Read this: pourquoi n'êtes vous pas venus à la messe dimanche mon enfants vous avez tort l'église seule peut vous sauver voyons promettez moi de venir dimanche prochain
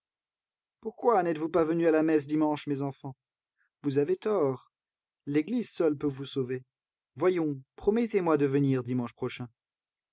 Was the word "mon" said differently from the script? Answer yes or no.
yes